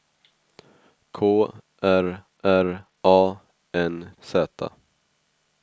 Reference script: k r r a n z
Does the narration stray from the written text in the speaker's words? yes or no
no